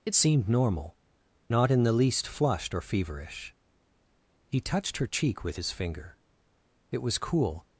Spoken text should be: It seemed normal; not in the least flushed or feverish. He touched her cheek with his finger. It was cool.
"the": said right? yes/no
yes